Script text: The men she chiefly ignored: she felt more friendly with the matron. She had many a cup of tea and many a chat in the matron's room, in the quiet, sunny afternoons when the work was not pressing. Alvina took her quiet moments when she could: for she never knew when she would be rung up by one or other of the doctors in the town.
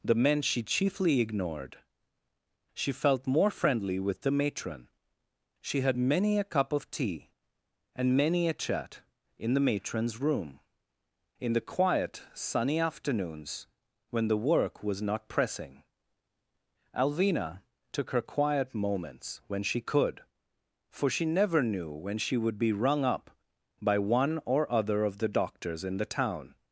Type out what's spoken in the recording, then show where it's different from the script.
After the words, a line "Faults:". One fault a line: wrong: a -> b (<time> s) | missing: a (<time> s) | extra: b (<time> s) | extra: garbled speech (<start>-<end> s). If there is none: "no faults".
The men she chiefly ignored: she felt more friendly with the matron. She had many a cup of tea and many a chat in the matron's room, in the quiet, sunny afternoons when the work was not pressing. Alvina took her quiet moments when she could: for she never knew when she would be rung up by one or other of the doctors in the town.
Faults:
no faults